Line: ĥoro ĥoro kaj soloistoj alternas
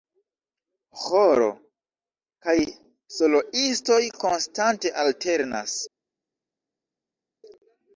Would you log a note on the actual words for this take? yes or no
yes